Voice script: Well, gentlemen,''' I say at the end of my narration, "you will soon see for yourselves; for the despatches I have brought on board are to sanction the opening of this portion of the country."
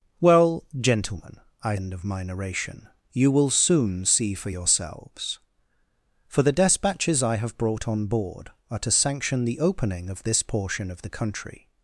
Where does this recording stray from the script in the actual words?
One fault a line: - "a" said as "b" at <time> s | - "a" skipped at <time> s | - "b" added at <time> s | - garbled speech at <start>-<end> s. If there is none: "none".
- "say at the" skipped at 1.8 s